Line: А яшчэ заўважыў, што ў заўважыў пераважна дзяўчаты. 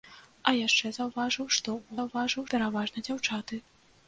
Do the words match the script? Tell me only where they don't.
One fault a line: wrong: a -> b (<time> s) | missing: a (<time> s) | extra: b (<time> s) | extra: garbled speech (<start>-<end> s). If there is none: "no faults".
no faults